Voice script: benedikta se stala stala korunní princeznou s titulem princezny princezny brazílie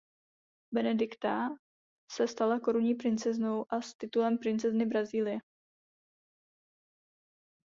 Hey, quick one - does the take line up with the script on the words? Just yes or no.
no